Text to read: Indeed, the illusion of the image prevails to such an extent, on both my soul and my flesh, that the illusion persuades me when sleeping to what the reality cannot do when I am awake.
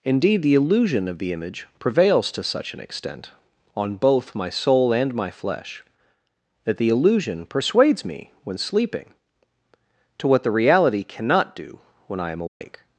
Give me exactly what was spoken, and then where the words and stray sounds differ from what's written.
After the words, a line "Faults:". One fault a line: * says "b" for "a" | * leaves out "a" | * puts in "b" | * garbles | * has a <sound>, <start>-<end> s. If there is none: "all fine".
Indeed, the illusion of the image prevails to such an extent, on both my soul and my flesh, that the illusion persuades me when sleeping to what the reality cannot do when I am awake.
Faults:
* has a dropout, 12.5-12.6 s